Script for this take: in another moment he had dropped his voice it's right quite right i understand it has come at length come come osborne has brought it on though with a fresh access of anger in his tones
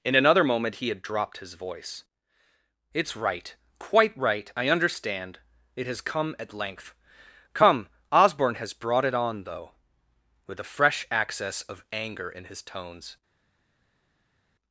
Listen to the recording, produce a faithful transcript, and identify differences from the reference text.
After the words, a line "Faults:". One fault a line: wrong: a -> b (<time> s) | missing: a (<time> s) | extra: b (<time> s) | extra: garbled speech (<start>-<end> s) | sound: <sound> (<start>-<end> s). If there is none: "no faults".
in another moment he had dropped his voice it's right quite right i understand it has come at length come osborne has brought it on though with a fresh access of anger in his tones
Faults:
missing: come (7.9 s)